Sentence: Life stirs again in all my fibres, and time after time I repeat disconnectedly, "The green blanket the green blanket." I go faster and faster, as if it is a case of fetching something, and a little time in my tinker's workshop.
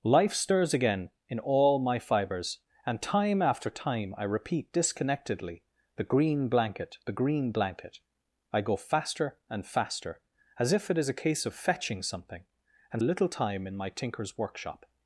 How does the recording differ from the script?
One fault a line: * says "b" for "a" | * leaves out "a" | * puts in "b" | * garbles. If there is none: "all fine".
all fine